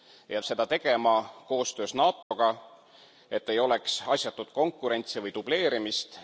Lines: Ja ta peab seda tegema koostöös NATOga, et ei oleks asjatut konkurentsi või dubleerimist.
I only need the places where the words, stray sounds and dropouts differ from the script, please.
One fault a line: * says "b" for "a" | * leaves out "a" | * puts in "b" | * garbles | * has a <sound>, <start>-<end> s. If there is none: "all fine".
* leaves out "ta peab"
* has a dropout, 2.2-2.3 s